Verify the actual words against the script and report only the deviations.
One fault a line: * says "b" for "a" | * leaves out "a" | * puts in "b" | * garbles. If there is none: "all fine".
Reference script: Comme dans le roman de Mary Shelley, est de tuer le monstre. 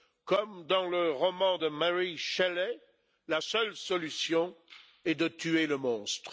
* puts in "la seule solution"